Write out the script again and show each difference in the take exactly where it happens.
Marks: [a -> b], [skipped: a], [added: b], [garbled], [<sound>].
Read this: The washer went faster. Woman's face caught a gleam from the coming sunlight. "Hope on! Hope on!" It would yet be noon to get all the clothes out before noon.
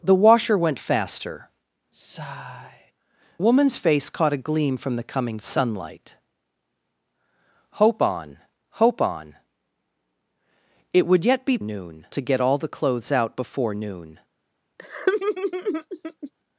The washer went faster. [sigh] Woman's face caught a gleam from the coming sunlight. "Hope on! Hope on!" It would yet be noon to get all the clothes out before noon. [laugh]